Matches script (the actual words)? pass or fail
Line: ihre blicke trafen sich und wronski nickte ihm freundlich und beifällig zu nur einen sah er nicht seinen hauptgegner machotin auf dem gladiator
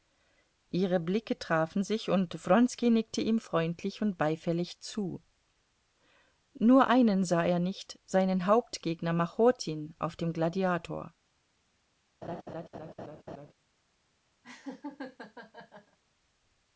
pass